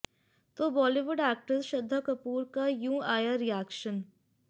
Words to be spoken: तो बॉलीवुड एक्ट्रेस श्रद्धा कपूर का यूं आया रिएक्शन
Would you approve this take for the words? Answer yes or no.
yes